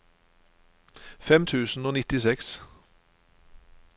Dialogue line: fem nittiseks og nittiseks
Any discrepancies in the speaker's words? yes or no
yes